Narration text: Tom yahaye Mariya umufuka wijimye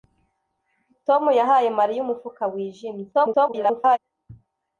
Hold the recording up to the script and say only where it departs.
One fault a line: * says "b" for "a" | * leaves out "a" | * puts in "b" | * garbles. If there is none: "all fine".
* garbles